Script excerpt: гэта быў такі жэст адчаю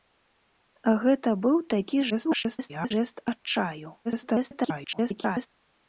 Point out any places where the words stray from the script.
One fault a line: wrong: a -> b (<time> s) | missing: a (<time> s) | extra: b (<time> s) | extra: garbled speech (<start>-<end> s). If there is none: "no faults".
extra: garbled speech (2.1-2.9 s)
extra: garbled speech (4.0-5.5 s)